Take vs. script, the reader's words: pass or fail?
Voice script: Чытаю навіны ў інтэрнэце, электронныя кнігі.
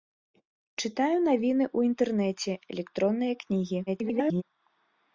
fail